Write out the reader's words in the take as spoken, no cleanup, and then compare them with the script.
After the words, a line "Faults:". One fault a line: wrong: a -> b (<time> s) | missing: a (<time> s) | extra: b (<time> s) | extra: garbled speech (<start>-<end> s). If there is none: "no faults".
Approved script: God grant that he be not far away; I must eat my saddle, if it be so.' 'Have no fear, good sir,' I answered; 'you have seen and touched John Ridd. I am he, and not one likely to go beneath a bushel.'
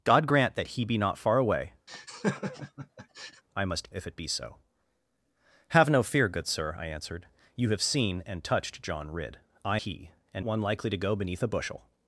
God grant that he be not far away; I must if it be so.' 'Have no fear, good sir,' I answered; 'you have seen and touched John Ridd. I he, and one likely to go beneath a bushel.'
Faults:
missing: eat my saddle (3.9 s)
missing: am (9.8 s)
missing: not (10.4 s)